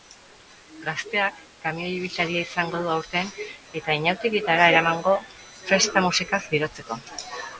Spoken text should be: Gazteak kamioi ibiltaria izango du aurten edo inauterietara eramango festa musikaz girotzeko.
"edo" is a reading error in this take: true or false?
true